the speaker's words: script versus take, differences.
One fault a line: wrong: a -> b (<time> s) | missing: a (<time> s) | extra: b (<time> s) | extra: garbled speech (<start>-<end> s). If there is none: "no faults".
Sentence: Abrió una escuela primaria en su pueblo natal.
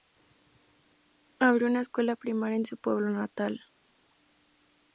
no faults